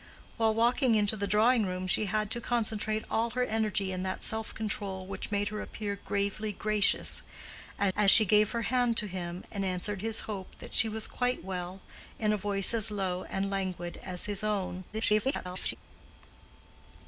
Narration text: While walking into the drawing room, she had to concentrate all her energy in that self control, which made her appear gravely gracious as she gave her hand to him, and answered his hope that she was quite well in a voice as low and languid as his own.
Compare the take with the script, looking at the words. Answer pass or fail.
fail